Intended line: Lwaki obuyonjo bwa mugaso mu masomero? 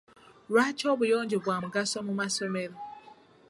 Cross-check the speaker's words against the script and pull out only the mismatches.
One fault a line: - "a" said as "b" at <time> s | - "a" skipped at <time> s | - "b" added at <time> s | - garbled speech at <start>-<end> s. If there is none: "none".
none